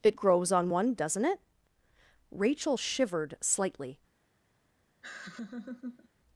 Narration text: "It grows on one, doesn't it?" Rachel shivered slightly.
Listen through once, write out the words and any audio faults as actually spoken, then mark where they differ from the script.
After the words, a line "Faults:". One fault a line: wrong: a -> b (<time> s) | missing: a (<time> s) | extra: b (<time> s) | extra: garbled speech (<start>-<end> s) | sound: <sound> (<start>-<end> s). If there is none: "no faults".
"It grows on one, doesn't it?" Rachel shivered slightly.
Faults:
sound: laugh (5.0-6.1 s)